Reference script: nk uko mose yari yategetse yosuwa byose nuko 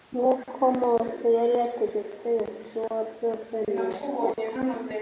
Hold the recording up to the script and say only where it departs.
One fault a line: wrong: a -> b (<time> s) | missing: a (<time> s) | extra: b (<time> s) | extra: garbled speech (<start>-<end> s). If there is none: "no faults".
no faults